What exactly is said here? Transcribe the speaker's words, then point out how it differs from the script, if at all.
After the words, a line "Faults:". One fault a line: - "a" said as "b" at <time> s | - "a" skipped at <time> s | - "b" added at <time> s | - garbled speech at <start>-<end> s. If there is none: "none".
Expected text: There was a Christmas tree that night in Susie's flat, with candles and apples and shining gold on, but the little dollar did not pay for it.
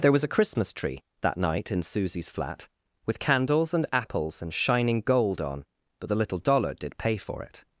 There was a Christmas tree that night in Susie's flat, with candles and apples and shining gold on, but the little dollar did pay for it.
Faults:
- "not" skipped at 7.0 s